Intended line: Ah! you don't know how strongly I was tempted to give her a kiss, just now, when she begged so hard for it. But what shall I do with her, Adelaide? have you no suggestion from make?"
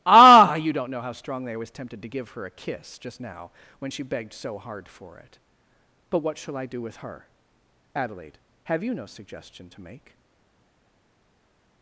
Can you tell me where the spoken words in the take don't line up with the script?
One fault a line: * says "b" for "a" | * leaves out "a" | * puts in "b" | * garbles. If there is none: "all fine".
* says "to" for "from"